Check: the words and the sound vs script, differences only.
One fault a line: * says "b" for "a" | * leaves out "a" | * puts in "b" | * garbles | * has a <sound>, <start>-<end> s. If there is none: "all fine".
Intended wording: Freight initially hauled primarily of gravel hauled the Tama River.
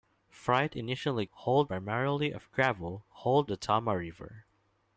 all fine